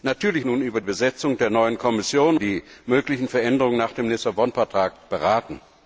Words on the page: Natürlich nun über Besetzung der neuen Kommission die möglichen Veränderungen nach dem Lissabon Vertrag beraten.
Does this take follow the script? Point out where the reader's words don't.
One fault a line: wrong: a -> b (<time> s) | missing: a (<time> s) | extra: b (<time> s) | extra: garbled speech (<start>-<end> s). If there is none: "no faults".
no faults